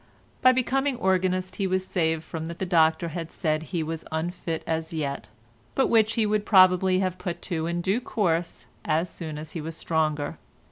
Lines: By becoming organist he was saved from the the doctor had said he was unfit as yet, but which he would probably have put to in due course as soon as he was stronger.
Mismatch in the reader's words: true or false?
false